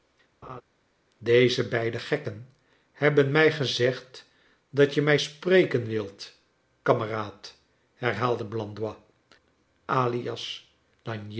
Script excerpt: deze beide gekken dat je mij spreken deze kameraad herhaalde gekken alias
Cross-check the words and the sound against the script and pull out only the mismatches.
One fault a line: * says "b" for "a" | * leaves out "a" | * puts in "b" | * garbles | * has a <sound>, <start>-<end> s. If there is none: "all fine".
* has a laugh, 0.4-0.6 s
* puts in "hebben mij gezegd"
* says "wilt" for "deze"
* says "blandois" for "gekken"